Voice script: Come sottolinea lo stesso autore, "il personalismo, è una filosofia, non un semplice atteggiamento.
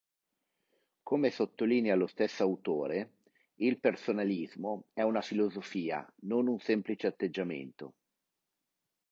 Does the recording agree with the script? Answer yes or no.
yes